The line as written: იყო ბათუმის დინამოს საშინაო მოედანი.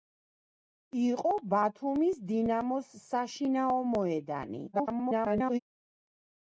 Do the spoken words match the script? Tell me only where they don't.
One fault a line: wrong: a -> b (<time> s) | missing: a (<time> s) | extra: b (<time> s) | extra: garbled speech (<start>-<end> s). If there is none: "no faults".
extra: garbled speech (4.7-5.6 s)